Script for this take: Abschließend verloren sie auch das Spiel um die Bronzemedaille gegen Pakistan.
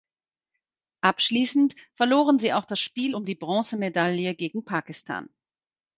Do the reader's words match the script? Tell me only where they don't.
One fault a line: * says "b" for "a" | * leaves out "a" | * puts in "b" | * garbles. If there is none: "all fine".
all fine